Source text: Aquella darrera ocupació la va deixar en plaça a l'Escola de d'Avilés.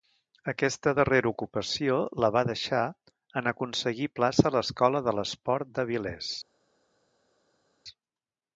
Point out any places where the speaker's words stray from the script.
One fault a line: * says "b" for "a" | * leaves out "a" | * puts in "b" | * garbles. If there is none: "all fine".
* says "Aquesta" for "Aquella"
* puts in "aconseguir"
* puts in "l'Esport"